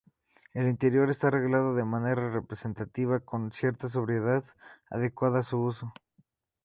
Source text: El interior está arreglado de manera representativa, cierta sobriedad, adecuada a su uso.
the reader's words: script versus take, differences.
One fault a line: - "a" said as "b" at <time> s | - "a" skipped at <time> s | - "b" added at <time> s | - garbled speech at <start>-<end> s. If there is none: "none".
- "con" added at 3.2 s